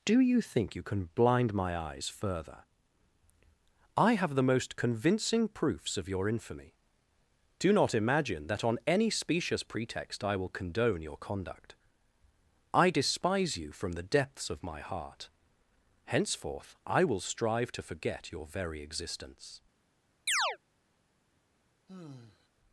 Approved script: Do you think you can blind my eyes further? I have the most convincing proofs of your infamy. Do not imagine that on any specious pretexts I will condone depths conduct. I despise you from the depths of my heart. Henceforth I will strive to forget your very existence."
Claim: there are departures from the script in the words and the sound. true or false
true